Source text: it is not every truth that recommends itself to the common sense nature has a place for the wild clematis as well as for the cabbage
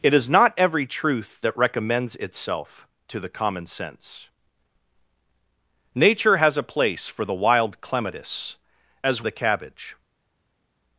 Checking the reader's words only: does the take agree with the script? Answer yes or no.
no